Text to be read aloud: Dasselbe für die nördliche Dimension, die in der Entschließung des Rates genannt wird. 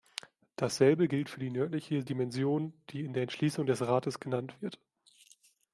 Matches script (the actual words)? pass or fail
fail